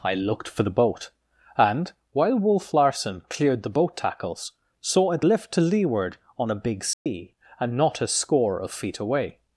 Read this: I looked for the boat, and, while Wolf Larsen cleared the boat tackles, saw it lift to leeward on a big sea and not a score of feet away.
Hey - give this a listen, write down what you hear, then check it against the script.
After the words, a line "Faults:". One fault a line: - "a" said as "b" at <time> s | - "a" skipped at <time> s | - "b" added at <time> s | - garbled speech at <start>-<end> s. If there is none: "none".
I looked for the boat, and, while Wolf Larsen cleared the boat tackles, saw it lift to leeward on a big sea and not a score of feet away.
Faults:
none